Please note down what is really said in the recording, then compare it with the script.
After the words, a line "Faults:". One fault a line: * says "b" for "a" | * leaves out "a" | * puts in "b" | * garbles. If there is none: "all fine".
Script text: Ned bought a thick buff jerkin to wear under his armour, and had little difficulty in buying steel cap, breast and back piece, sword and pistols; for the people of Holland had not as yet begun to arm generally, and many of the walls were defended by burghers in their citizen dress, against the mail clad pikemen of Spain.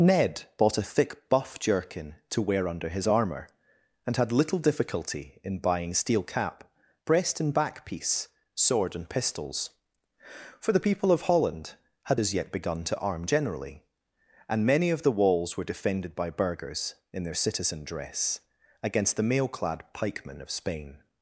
Ned bought a thick buff jerkin to wear under his armour, and had little difficulty in buying steel cap, breast and back piece, sword and pistols; for the people of Holland had as yet begun to arm generally, and many of the walls were defended by burghers in their citizen dress, against the mail clad pikemen of Spain.
Faults:
* leaves out "not"